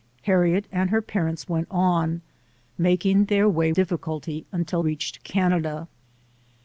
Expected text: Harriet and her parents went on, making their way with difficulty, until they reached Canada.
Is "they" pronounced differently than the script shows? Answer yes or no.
yes